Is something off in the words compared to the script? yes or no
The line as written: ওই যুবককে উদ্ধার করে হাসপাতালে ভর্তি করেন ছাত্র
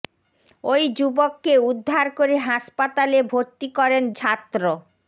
no